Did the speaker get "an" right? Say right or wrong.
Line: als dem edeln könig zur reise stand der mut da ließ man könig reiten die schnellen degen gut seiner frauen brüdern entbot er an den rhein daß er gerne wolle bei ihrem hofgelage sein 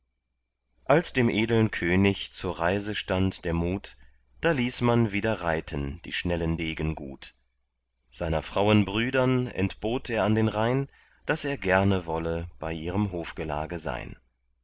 right